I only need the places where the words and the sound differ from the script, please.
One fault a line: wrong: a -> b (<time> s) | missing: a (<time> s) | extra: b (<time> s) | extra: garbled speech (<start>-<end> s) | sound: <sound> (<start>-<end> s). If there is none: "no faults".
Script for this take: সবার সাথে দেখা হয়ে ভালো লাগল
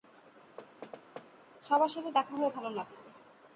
sound: thud (0.6-1.3 s)